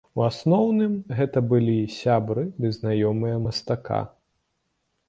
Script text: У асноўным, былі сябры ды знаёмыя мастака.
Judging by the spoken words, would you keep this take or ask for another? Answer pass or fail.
fail